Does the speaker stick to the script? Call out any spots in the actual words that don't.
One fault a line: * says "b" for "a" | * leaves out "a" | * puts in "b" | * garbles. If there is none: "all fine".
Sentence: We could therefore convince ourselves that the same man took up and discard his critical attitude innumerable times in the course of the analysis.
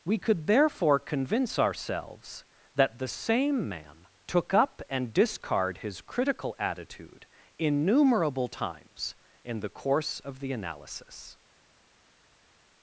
all fine